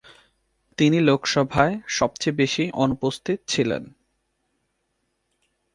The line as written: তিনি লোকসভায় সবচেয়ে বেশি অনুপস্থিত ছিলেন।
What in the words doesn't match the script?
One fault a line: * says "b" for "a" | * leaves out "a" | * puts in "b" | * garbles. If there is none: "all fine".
all fine